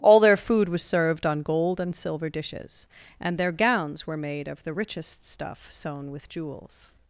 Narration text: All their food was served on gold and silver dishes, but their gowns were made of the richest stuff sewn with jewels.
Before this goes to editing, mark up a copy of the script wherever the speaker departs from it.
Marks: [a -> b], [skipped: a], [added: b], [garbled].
All their food was served on gold and silver dishes, [but -> and] their gowns were made of the richest stuff sewn with jewels.